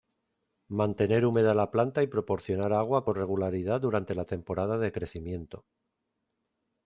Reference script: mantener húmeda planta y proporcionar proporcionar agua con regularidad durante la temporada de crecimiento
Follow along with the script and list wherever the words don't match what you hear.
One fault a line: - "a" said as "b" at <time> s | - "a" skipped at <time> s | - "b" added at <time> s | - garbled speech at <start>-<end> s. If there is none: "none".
- "la" added at 1.5 s
- "proporcionar" skipped at 2.7 s